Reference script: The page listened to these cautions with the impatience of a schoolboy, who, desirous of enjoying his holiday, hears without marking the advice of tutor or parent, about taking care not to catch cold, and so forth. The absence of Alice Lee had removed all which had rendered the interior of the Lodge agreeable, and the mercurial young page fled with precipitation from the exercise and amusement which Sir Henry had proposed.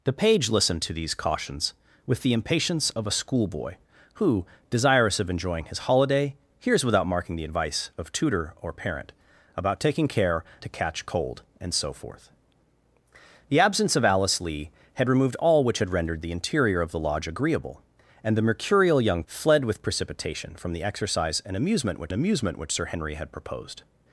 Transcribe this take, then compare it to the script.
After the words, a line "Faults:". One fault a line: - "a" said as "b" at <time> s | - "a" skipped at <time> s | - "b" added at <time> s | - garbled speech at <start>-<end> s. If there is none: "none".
The page listened to these cautions with the impatience of a schoolboy, who, desirous of enjoying his holiday, hears without marking the advice of tutor or parent, about taking care to catch cold, and so forth. The absence of Alice Lee had removed all which had rendered the interior of the Lodge agreeable, and the mercurial young fled with precipitation from the exercise and amusement which amusement which Sir Henry had proposed.
Faults:
- "not" skipped at 10.4 s
- "page" skipped at 19.2 s
- "amusement which" added at 22.1 s